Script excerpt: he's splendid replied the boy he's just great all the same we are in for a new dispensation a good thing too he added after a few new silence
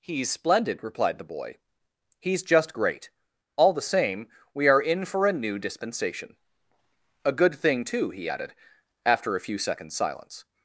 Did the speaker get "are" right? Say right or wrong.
right